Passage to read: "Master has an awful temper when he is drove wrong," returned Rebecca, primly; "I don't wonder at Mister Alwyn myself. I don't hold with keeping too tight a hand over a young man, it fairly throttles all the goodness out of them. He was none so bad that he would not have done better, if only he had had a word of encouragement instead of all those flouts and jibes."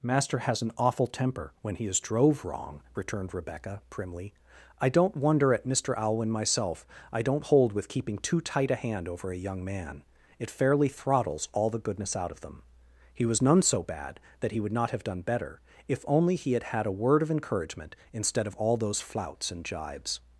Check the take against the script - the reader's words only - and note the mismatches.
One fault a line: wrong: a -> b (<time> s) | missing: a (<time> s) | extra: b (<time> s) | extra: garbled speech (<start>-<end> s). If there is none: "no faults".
no faults